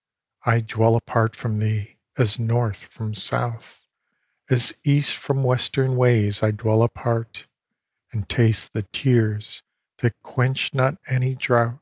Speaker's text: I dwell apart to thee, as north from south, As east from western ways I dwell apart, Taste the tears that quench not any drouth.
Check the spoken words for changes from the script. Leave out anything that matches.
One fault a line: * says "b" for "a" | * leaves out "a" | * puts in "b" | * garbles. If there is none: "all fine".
* says "from" for "to"
* puts in "And"